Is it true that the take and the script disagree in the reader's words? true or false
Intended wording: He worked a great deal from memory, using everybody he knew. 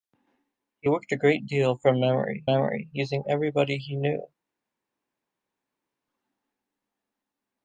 true